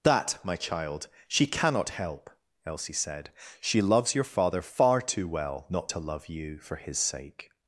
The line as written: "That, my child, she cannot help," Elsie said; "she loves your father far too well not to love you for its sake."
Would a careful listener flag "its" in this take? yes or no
yes